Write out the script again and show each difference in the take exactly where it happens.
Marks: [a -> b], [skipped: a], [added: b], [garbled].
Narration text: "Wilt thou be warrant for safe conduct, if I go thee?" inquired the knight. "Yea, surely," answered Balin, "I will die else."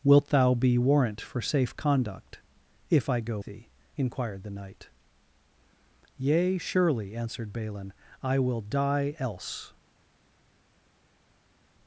"Wilt thou be warrant for safe conduct, if I go thee?" inquired the knight. "Yea, surely," answered Balin, "I will die else."